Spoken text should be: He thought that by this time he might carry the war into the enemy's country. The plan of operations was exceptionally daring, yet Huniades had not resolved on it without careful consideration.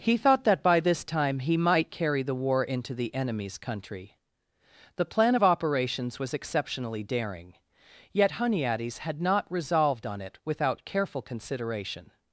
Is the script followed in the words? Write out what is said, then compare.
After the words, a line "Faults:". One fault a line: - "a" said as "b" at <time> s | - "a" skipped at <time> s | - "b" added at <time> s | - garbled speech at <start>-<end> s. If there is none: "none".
He thought that by this time he might carry the war into the enemy's country. The plan of operations was exceptionally daring, yet Huniades had not resolved on it without careful consideration.
Faults:
none